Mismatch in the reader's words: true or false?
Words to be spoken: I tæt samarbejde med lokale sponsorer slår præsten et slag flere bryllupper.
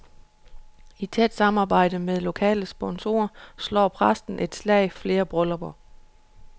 false